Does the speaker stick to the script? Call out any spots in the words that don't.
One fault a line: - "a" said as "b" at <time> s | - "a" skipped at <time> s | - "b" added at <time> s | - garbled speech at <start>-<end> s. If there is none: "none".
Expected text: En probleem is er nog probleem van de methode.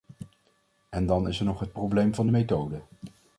- "probleem" said as "dan" at 1.1 s
- "het" added at 1.6 s